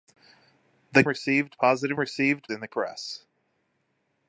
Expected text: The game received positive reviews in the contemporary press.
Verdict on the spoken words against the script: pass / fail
fail